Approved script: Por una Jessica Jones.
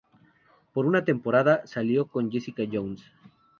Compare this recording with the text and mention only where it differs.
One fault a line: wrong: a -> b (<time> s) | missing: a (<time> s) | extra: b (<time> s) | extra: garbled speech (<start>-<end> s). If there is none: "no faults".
extra: temporada salió con (1.1 s)